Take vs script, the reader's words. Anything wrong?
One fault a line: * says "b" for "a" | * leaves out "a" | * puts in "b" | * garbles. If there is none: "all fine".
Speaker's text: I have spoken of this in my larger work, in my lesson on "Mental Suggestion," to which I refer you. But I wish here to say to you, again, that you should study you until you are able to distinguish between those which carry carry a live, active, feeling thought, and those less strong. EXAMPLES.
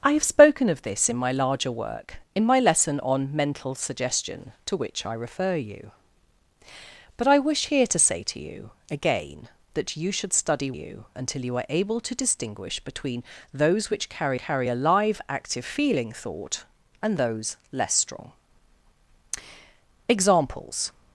all fine